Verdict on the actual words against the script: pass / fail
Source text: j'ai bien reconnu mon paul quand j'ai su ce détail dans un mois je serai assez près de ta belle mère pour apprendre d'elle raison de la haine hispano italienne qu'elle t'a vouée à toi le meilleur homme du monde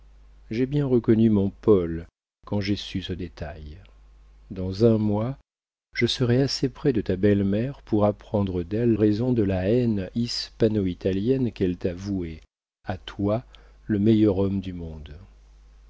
pass